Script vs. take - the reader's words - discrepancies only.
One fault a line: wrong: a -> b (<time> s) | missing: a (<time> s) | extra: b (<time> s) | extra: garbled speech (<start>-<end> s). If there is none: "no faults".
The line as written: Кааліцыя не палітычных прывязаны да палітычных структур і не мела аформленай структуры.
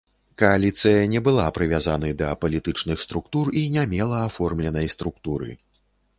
wrong: палітычных -> была (1.3 s)